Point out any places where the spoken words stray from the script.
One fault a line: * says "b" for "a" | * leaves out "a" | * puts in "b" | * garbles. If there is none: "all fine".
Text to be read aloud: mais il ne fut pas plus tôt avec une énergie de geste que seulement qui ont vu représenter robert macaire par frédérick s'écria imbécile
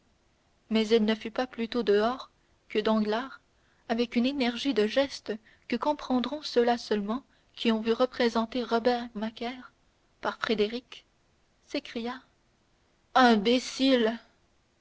* puts in "dehors que danglars"
* puts in "comprendront ceux là"